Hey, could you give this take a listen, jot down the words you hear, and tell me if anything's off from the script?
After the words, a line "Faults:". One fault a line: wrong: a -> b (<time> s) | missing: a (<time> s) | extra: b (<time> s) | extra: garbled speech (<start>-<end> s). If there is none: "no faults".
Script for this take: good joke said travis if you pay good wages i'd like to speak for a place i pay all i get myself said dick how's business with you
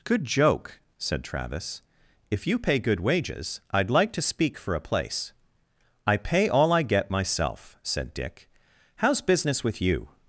good joke said travis if you pay good wages i'd like to speak for a place i pay all i get myself said dick how's business with you
Faults:
no faults